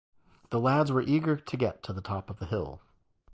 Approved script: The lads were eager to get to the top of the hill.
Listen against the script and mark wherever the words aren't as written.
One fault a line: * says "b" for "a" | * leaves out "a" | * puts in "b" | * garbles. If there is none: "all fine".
all fine